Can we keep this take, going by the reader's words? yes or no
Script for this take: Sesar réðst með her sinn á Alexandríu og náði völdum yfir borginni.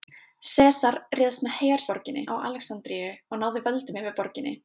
no